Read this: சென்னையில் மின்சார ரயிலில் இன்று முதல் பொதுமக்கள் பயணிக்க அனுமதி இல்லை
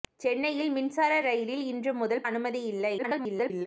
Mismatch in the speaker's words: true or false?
true